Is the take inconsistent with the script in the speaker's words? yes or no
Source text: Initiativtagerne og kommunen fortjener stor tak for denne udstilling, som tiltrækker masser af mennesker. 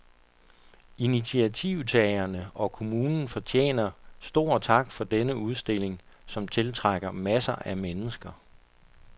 no